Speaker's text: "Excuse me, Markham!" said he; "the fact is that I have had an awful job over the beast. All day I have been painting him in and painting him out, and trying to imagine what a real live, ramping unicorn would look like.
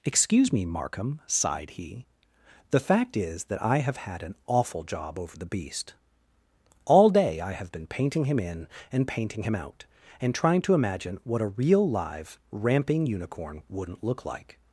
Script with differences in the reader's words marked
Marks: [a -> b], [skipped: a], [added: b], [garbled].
"Excuse me, Markham!" [said -> sighed] he; "the fact is that I have had an awful job over the beast. All day I have been painting him in and painting him out, and trying to imagine what a real live, ramping unicorn [would -> wouldn't] look like.